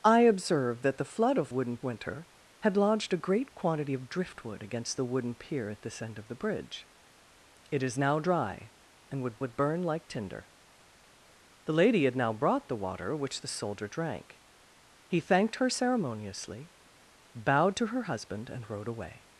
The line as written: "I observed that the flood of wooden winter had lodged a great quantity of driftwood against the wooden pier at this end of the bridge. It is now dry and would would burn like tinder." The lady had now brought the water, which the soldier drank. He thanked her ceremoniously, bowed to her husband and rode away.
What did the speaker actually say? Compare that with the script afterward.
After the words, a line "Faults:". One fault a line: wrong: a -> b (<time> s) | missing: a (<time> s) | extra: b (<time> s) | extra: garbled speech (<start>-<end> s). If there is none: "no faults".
"I observed that the flood of wooden winter had lodged a great quantity of driftwood against the wooden pier at this end of the bridge. It is now dry and would would burn like tinder." The lady had now brought the water, which the soldier drank. He thanked her ceremoniously, bowed to her husband and rode away.
Faults:
no faults